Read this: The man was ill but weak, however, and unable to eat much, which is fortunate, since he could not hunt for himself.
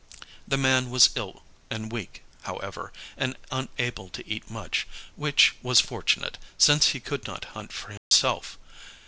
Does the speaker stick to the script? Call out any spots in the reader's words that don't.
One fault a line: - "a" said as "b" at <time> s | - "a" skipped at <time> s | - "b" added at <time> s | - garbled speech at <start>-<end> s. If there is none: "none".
- "but" said as "and" at 1.7 s
- "is" said as "was" at 5.6 s